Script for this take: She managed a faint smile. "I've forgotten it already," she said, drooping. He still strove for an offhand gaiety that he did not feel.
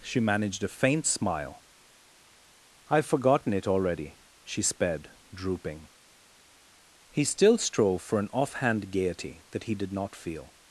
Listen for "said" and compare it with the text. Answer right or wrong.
wrong